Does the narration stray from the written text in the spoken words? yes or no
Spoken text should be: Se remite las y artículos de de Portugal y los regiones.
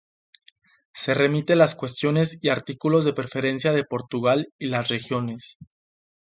yes